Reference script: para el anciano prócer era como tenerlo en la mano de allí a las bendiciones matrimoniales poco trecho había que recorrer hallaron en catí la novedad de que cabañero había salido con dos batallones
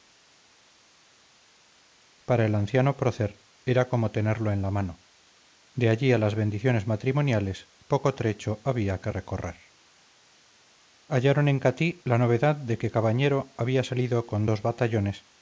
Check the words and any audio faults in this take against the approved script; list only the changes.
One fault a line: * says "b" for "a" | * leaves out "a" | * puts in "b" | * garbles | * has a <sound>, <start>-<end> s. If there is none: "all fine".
all fine